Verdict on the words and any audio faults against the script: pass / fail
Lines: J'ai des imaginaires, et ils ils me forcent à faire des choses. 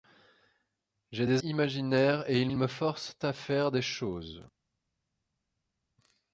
pass